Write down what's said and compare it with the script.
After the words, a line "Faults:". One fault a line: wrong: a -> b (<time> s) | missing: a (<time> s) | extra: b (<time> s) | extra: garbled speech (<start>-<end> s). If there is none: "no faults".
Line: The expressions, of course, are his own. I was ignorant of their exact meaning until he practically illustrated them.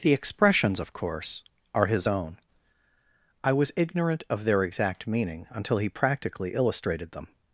The expressions, of course, are his own. I was ignorant of their exact meaning until he practically illustrated them.
Faults:
no faults